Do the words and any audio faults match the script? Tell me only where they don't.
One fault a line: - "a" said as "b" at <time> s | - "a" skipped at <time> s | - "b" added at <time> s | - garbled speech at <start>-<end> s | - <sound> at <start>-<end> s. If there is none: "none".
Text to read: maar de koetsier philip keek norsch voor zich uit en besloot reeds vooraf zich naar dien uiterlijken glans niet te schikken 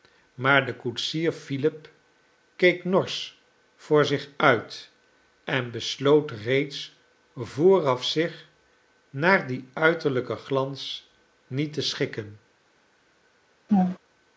- laugh at 13.7-14.0 s